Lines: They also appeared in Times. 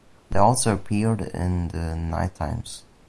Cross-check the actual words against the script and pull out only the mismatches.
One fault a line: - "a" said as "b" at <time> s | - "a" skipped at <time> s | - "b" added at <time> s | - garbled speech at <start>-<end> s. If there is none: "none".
- "the Night" added at 1.7 s